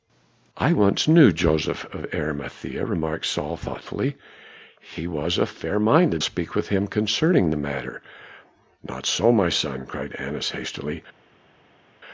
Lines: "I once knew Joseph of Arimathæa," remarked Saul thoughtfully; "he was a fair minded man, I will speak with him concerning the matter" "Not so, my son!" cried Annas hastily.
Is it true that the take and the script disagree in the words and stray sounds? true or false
true